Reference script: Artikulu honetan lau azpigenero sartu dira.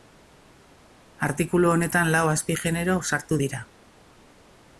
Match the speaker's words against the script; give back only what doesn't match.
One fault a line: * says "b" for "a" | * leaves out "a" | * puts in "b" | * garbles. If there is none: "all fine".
all fine